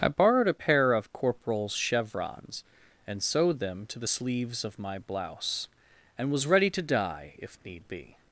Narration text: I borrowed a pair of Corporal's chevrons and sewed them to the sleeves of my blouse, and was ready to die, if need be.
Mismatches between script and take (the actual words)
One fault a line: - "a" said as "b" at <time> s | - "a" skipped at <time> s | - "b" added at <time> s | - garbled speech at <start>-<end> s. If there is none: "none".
none